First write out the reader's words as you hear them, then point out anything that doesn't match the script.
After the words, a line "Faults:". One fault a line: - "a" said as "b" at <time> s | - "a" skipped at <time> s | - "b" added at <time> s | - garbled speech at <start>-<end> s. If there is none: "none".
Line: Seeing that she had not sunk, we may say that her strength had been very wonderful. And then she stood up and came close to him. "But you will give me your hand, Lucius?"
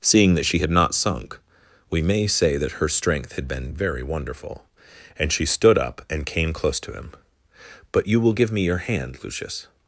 Seeing that she had not sunk, we may say that her strength had been very wonderful. And she stood up and came close to him. "But you will give me your hand, Lucius?"
Faults:
- "then" skipped at 5.3 s